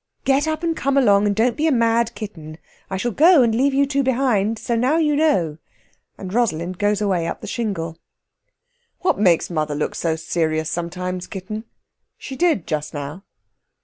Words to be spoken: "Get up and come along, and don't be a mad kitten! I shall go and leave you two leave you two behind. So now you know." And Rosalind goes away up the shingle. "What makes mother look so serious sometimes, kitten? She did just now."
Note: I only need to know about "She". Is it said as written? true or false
true